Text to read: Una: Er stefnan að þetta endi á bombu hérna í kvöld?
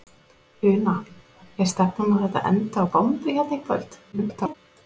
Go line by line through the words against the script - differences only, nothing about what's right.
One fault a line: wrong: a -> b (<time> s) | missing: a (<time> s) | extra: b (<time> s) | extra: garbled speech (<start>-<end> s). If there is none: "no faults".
extra: garbled speech (4.1-4.5 s)